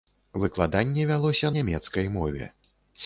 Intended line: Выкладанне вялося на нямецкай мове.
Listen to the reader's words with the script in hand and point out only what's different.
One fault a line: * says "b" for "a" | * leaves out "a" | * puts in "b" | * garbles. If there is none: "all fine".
* leaves out "на"